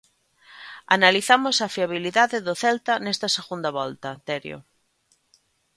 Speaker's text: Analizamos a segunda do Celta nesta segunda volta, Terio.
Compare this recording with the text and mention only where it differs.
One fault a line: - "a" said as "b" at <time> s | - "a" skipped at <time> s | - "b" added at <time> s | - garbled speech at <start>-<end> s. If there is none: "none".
- "segunda" said as "fiabilidade" at 1.8 s